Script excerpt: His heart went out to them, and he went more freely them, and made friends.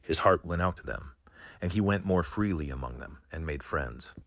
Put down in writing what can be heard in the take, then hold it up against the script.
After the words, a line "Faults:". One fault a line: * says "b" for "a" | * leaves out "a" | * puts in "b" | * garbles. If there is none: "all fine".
His heart went out to them, and he went more freely among them, and made friends.
Faults:
* puts in "among"